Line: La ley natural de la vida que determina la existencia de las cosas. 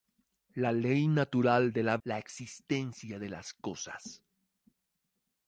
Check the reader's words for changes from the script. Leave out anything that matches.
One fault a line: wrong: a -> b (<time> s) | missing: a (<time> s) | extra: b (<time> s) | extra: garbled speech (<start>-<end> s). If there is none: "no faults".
missing: vida que determina (2.0 s)